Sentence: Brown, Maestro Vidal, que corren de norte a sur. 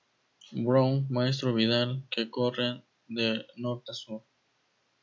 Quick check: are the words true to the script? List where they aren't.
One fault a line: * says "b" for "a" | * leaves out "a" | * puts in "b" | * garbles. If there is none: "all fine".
all fine